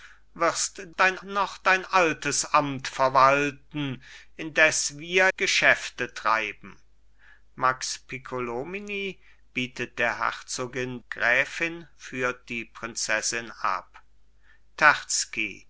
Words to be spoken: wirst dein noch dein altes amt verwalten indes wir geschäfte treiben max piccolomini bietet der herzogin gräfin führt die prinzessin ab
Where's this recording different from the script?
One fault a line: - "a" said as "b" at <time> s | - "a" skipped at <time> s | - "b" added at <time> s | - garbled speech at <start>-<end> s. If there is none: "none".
none